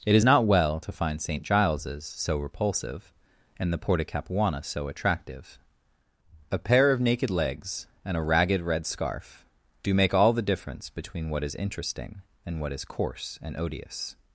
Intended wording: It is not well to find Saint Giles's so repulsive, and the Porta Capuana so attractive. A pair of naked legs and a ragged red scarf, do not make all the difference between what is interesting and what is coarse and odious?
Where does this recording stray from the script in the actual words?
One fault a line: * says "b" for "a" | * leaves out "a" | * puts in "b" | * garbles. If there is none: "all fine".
* leaves out "not"